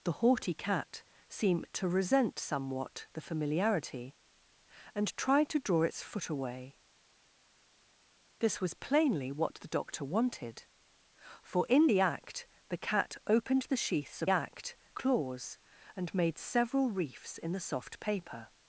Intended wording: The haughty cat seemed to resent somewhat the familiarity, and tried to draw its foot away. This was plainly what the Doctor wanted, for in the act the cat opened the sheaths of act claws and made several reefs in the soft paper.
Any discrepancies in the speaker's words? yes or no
no